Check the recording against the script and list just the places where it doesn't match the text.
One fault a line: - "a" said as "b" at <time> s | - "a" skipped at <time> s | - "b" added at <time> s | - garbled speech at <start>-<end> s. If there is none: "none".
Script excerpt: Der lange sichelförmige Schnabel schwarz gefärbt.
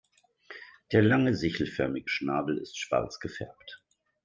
- "ist" added at 2.6 s